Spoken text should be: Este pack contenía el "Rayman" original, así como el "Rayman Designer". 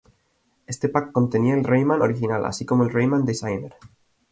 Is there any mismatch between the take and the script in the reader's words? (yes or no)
no